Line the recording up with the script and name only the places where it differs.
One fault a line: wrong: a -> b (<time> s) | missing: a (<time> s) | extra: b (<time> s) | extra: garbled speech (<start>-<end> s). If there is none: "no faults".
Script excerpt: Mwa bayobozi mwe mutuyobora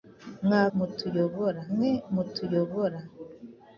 wrong: bayobozi -> mutuyobora (0.8 s)